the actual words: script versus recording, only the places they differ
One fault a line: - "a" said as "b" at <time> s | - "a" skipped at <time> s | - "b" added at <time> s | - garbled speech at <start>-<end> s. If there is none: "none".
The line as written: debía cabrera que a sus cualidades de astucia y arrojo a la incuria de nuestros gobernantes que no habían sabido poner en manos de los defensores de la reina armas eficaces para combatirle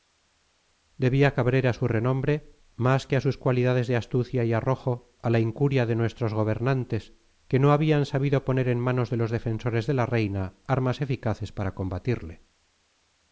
- "su renombre más" added at 1.7 s